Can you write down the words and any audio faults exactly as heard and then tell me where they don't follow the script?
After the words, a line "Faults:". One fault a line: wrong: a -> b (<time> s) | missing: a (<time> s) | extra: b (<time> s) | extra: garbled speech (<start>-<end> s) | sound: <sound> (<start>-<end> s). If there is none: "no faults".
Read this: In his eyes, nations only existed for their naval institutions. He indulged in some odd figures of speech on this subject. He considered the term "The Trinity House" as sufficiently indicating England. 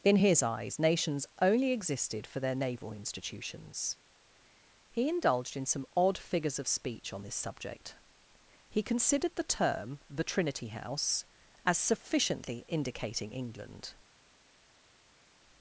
In his eyes, nations only existed for their naval institutions. He indulged in some odd figures of speech on this subject. He considered the term "The Trinity House" as sufficiently indicating England.
Faults:
no faults